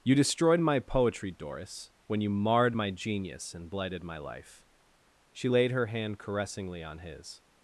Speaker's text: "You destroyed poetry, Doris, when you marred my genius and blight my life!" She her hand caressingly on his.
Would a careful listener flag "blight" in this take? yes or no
yes